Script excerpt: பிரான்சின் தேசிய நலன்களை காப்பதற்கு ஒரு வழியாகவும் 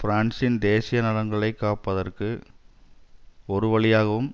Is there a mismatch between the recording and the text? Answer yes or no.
no